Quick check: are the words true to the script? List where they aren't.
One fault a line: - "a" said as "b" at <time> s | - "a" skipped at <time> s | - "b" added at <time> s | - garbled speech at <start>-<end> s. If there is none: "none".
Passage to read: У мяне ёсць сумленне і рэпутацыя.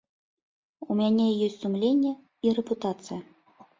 none